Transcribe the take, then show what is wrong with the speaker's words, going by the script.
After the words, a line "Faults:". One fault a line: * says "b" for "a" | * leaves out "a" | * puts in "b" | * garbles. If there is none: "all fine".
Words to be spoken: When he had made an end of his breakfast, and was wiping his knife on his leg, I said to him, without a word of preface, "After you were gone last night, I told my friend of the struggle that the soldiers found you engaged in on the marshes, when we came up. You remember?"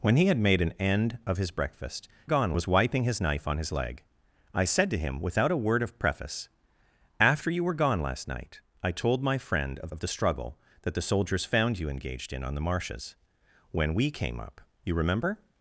When he had made an end of his breakfast, gone was wiping his knife on his leg, I said to him, without a word of preface, "After you were gone last night, I told my friend of of the struggle that the soldiers found you engaged in on the marshes, when we came up. You remember?"
Faults:
* says "gone" for "and"
* puts in "of"